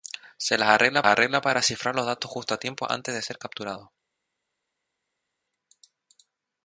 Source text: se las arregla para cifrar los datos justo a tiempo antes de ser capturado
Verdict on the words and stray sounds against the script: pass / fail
fail